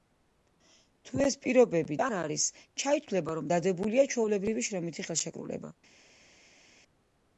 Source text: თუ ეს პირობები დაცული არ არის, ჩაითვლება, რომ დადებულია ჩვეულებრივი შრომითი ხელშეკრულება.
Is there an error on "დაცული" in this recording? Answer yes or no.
yes